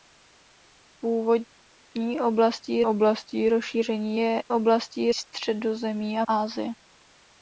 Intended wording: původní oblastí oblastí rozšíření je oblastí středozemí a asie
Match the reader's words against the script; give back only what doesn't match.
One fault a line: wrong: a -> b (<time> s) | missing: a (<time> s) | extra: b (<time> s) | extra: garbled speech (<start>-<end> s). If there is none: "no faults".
no faults